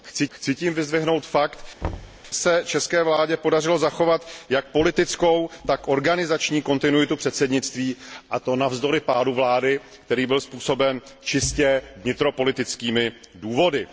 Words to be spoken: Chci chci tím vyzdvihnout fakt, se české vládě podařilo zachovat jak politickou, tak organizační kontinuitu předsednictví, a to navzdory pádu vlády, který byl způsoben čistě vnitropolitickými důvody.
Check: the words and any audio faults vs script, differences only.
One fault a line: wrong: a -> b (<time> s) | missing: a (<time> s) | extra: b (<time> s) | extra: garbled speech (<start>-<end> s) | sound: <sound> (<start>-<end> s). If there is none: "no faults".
sound: thud (1.8-2.2 s)